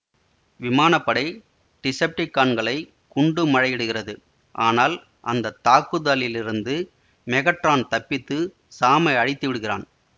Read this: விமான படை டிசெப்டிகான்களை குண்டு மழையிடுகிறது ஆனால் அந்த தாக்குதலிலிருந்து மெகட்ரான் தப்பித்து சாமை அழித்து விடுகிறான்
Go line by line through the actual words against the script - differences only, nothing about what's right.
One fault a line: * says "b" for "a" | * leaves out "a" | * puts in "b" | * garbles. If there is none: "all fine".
all fine